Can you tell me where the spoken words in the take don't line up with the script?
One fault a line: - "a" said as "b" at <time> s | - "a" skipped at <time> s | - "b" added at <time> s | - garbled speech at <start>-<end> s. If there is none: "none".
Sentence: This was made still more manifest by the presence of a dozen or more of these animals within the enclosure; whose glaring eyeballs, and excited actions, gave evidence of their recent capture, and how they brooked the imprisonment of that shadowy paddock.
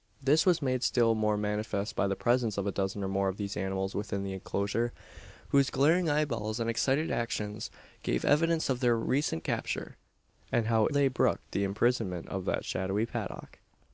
none